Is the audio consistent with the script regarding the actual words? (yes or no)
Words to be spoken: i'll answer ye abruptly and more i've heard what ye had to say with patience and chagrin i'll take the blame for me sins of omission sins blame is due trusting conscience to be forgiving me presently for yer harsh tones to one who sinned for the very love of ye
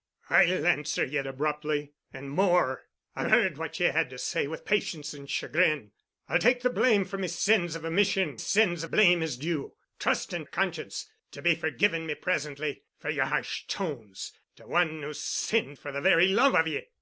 yes